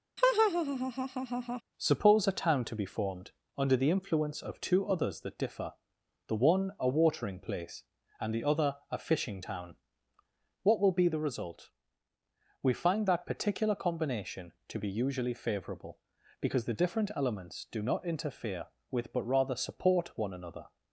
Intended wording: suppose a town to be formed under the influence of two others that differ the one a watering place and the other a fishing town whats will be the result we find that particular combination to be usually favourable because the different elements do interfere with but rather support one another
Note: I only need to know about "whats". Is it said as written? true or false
false